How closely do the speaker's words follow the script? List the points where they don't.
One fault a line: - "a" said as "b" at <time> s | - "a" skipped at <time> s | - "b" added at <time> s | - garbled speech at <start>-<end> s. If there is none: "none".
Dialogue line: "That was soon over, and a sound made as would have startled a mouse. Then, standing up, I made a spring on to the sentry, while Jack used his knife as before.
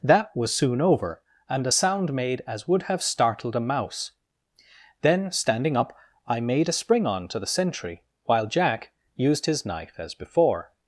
none